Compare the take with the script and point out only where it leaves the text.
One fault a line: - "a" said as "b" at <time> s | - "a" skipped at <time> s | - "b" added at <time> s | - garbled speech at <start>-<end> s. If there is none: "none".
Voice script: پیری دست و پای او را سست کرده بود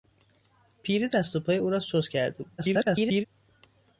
- garbled speech at 2.6-3.3 s